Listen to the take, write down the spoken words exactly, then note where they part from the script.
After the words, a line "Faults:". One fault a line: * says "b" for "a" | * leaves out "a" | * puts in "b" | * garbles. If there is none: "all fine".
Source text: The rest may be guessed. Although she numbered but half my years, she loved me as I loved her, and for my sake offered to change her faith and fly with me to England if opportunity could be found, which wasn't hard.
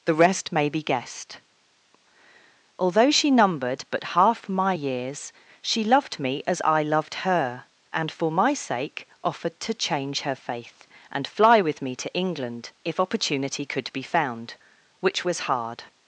The rest may be guessed. Although she numbered but half my years, she loved me as I loved her, and for my sake offered to change her faith and fly with me to England if opportunity could be found, which was hard.
Faults:
* says "was" for "wasn't"